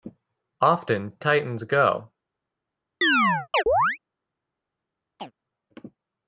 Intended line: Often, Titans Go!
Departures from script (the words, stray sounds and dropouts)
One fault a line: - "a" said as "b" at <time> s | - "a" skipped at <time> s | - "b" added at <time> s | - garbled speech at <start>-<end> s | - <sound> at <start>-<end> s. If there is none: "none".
- chirp at 3.0-4.0 s
- chirp at 5.2-5.3 s